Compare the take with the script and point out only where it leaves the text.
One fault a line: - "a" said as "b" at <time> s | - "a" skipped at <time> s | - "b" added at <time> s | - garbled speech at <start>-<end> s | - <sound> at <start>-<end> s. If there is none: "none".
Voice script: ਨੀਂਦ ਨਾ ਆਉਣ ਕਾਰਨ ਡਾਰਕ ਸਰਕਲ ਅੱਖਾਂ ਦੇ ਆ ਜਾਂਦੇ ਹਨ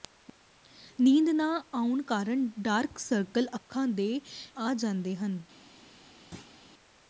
- thud at 6.3-6.5 s